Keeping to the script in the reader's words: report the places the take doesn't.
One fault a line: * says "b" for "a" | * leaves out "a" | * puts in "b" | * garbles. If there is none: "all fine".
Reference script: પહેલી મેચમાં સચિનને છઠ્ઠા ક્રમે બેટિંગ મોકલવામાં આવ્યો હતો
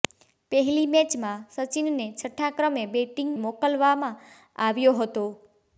all fine